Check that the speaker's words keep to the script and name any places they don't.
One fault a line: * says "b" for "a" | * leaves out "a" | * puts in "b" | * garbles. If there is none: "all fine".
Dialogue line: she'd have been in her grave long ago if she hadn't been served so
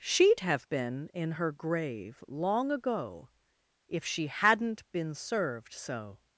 all fine